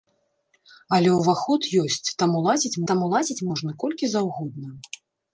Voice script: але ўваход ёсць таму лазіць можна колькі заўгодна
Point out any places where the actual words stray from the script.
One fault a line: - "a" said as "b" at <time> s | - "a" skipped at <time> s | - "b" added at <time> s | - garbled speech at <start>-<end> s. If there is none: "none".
- "таму лазіць" added at 2.9 s